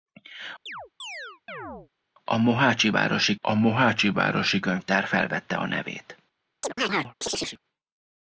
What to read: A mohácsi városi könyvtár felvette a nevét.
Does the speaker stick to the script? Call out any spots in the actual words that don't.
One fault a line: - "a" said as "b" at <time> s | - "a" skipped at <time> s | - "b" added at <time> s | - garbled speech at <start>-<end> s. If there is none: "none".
- "a mohácsi városi" added at 3.4 s